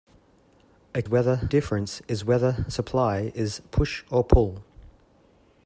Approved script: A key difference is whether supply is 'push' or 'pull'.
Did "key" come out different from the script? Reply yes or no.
yes